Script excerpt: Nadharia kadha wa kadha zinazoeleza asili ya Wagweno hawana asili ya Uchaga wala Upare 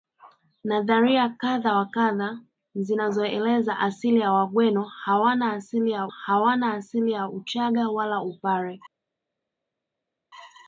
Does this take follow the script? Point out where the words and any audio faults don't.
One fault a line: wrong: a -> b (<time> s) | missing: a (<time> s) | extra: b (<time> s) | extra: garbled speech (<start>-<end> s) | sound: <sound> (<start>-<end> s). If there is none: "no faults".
extra: hawana asili ya (6.0 s)